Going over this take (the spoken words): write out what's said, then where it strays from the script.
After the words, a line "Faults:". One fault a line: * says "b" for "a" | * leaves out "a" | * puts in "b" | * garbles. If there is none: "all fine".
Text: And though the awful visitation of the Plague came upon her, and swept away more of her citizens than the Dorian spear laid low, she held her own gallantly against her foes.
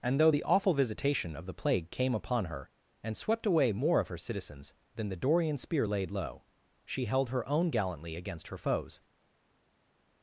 And though the awful visitation of the Plague came upon her, and swept away more of her citizens than the Dorian spear laid low, she held her own gallantly against her foes.
Faults:
all fine